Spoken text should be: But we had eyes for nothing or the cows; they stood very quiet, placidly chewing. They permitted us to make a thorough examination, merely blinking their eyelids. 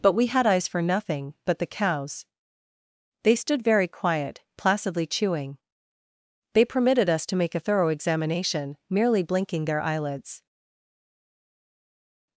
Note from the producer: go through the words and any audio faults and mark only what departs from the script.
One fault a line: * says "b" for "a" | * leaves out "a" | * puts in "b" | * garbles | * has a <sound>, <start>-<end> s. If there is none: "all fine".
* says "but" for "or"